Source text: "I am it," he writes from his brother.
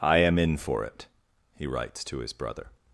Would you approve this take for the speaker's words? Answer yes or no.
no